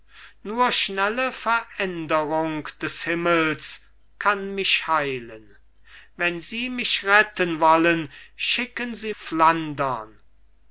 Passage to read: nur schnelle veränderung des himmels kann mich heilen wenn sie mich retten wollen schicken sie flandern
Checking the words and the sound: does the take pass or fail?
pass